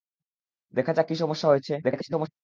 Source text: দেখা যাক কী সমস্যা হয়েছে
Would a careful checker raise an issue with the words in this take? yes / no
yes